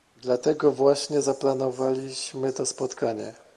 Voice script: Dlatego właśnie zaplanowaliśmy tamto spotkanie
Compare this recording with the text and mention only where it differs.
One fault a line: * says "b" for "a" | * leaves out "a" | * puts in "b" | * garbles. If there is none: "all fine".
* says "to" for "tamto"